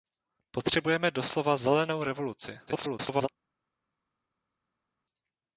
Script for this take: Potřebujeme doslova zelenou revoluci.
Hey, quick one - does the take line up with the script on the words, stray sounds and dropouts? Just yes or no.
no